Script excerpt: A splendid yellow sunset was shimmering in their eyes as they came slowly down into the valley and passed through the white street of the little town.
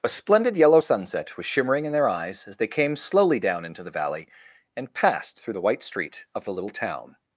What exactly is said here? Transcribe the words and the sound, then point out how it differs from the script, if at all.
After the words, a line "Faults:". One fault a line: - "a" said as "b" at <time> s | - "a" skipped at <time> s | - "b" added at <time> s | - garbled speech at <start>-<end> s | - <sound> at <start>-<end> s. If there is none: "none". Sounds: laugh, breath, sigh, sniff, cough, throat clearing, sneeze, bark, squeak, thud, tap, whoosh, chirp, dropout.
A splendid yellow sunset was shimmering in their eyes as they came slowly down into the valley and passed through the white street of the little town.
Faults:
none